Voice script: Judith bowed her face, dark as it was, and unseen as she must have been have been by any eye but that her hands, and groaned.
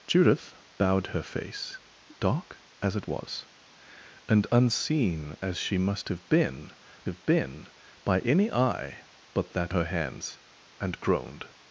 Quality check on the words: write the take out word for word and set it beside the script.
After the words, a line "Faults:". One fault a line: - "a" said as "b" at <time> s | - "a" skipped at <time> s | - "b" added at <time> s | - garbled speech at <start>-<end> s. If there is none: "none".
Judith bowed her face, dark as it was, and unseen as she must have been have been by any eye but that her hands, and groaned.
Faults:
none